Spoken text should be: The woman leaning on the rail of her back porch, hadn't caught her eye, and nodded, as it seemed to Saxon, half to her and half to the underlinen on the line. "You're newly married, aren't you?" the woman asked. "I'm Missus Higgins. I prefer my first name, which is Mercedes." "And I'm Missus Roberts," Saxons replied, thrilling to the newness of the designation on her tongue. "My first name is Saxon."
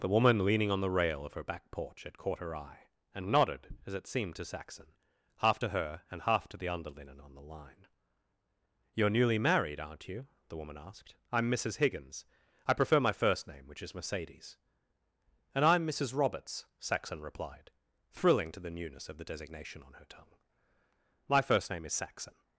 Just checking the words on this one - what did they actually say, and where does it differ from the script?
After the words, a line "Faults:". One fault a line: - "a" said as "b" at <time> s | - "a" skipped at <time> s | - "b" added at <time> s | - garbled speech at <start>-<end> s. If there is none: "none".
The woman leaning on the rail of her back porch, had caught her eye, and nodded, as it seemed to Saxon, half to her and half to the underlinen on the line. "You're newly married, aren't you?" the woman asked. "I'm Missus Higgins. I prefer my first name, which is Mercedes." "And I'm Missus Roberts," Saxon replied, thrilling to the newness of the designation on her tongue. "My first name is Saxon."
Faults:
- "hadn't" said as "had" at 2.0 s
- "Saxons" said as "Saxon" at 16.8 s